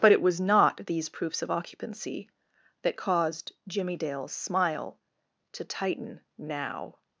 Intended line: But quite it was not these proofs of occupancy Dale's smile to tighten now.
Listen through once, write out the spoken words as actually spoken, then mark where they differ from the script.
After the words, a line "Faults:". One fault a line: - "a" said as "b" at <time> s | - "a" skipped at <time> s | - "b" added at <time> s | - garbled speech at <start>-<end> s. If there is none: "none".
But it was not these proofs of occupancy that caused Jimmie Dale's smile to tighten now.
Faults:
- "quite" skipped at 0.1 s
- "that caused Jimmie" added at 2.8 s